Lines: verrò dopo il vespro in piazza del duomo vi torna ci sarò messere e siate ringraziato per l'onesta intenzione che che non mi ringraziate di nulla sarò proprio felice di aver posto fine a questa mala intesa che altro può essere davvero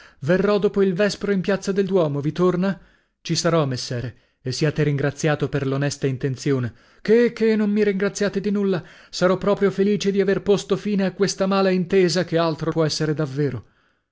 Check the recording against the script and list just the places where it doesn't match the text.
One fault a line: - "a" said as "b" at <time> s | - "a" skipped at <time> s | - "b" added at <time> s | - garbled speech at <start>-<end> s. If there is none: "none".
none